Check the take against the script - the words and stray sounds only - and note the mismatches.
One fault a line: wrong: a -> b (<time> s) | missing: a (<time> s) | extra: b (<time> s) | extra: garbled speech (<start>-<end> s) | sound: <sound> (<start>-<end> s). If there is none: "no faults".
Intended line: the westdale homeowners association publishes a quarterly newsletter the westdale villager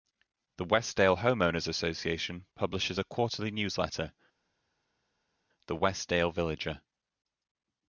no faults